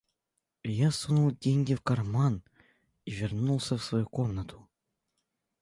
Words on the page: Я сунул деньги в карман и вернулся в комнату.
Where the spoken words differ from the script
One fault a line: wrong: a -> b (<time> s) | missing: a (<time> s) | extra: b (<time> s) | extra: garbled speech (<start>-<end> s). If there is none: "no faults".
extra: свою (3.8 s)